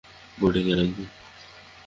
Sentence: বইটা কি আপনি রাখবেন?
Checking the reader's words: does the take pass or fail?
fail